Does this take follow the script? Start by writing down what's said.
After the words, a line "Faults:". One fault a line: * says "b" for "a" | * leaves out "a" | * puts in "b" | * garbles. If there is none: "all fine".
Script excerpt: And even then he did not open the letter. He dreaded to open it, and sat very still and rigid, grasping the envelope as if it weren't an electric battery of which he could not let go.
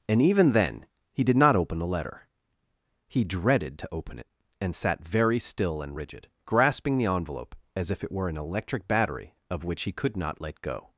And even then he did not open the letter. He dreaded to open it, and sat very still and rigid, grasping the envelope as if it were an electric battery of which he could not let go.
Faults:
* says "were" for "weren't"